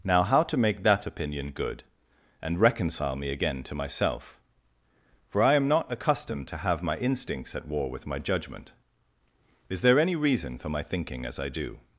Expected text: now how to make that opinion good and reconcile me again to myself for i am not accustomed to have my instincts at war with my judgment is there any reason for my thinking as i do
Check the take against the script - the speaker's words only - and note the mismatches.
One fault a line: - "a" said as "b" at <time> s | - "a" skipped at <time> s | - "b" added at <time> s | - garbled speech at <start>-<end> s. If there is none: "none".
none